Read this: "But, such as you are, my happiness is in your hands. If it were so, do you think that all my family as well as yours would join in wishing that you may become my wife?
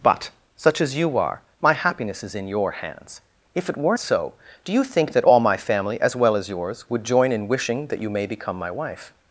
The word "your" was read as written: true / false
true